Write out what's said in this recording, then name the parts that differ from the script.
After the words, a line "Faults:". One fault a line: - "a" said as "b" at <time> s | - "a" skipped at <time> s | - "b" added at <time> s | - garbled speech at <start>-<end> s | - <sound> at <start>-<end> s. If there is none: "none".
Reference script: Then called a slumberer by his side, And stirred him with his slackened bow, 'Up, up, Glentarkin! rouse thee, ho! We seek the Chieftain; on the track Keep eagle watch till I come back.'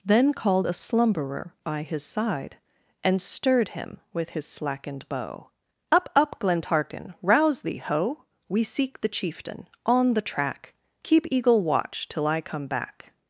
Then called a slumberer by his side, And stirred him with his slackened bow, 'Up, up, Glentarkin! rouse thee, ho! We seek the Chieftain; on the track Keep eagle watch till I come back.'
Faults:
none